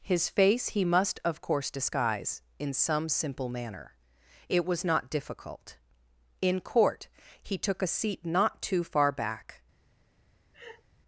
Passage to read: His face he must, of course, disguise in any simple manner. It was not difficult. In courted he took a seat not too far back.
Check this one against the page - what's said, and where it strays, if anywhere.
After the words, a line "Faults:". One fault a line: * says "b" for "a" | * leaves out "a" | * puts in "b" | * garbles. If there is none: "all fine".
His face he must, of course, disguise in some simple manner. It was not difficult. In court he took a seat not too far back.
Faults:
* says "some" for "any"
* says "court" for "courted"